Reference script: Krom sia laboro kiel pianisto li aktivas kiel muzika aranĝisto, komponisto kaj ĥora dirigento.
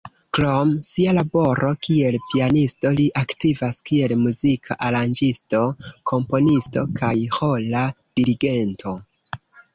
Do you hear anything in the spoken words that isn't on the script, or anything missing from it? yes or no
no